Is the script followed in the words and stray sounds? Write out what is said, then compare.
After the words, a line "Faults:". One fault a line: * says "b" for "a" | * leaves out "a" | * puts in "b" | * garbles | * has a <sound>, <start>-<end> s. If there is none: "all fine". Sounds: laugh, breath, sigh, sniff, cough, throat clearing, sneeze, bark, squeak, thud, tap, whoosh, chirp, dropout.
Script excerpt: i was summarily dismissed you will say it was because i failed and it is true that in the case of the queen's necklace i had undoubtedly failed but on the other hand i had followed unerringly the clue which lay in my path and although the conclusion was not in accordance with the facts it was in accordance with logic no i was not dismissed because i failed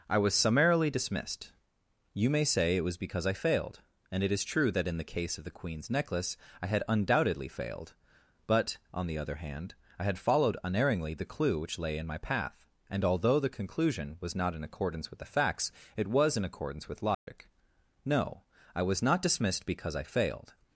i was summarily dismissed you may say it was because i failed and it is true that in the case of the queen's necklace i had undoubtedly failed but on the other hand i had followed unerringly the clue which lay in my path and although the conclusion was not in accordance with the facts it was in accordance with logic no i was not dismissed because i failed
Faults:
* says "may" for "will"
* has a dropout, 17.1-17.3 s